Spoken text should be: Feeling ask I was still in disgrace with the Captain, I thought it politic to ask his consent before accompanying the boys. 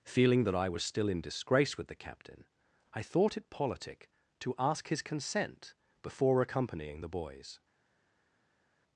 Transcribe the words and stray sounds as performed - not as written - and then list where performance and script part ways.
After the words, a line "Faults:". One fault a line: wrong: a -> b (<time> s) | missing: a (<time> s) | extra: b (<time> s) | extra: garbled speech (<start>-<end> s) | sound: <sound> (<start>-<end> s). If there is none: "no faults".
Feeling that I was still in disgrace with the Captain, I thought it politic to ask his consent before accompanying the boys.
Faults:
wrong: ask -> that (0.5 s)